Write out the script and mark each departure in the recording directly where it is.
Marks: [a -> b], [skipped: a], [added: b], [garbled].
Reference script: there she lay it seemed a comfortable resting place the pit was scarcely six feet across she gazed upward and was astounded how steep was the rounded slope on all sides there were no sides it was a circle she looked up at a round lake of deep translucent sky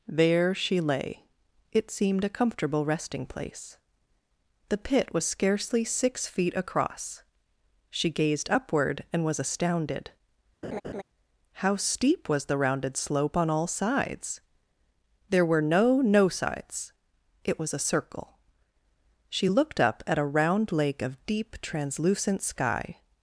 there she lay it seemed a comfortable resting place the pit was scarcely six feet across she gazed upward and was astounded how steep was the rounded slope on all sides there were no [added: no] sides it was a circle she looked up at a round lake of deep translucent sky